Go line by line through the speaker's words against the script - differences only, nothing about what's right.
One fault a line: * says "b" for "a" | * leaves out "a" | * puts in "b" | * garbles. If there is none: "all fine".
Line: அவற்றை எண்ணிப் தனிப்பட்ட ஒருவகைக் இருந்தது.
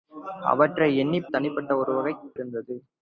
all fine